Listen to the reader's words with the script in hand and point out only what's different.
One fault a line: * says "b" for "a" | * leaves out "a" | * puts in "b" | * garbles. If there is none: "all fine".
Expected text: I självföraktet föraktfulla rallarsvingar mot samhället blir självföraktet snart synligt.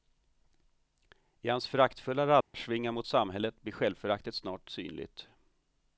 * says "hans" for "självföraktet"